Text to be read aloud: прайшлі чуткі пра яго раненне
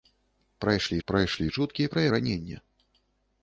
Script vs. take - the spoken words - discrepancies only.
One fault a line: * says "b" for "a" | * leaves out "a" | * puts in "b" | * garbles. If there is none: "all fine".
* puts in "прайшлі"
* leaves out "яго"